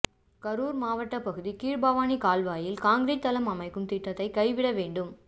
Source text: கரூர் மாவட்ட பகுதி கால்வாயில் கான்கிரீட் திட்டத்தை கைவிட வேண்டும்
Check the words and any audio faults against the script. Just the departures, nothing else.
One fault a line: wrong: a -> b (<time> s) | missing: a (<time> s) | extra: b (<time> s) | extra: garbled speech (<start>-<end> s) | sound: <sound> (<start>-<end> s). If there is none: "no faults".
extra: கீழ்பவானி (1.6 s)
extra: தளம் அமைக்கும் (3.3 s)